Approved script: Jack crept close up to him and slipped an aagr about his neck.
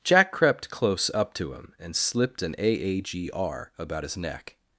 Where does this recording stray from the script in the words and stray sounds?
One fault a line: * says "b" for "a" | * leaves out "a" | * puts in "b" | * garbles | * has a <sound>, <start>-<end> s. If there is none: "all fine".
all fine